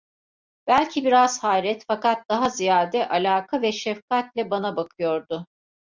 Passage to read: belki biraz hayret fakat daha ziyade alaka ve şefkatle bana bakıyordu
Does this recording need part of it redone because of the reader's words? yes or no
no